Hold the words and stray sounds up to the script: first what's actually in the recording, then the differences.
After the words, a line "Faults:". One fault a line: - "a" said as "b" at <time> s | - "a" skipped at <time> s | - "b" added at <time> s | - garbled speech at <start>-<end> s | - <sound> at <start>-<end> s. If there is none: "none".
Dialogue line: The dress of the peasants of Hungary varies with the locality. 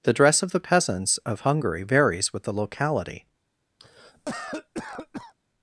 The dress of the peasants of Hungary varies with the locality.
Faults:
- cough at 3.8-5.3 s